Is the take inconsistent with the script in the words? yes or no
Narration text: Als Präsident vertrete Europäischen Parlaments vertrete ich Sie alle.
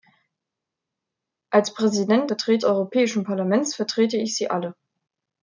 no